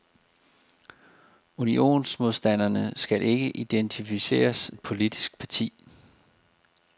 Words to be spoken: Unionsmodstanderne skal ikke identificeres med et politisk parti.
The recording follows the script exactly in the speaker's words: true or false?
false